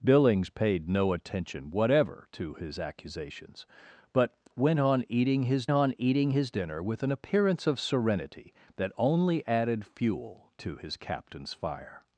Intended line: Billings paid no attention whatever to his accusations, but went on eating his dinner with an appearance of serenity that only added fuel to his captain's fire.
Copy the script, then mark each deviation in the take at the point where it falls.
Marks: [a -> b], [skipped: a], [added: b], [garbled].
Billings paid no attention whatever to his accusations, but went on eating his [added: on eating his] dinner with an appearance of serenity that only added fuel to his captain's fire.